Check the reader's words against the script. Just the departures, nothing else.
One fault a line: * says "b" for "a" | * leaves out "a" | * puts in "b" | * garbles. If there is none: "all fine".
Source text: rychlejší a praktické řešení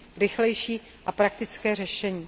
all fine